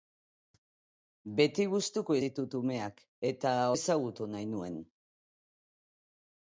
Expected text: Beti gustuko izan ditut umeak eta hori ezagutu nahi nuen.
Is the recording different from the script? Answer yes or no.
yes